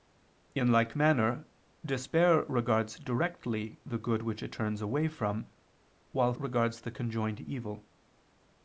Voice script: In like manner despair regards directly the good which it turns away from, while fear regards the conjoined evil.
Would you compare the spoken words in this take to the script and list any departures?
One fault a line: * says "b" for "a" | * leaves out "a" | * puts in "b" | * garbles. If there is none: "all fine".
* leaves out "fear"